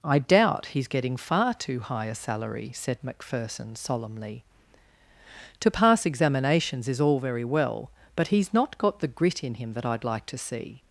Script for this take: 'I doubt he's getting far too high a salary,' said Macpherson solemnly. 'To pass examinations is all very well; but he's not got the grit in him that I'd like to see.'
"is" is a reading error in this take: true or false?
false